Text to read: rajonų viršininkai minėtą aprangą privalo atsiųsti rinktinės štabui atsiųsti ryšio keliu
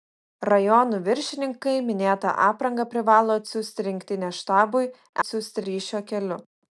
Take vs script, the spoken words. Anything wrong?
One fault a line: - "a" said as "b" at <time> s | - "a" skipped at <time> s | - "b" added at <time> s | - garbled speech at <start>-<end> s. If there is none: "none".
none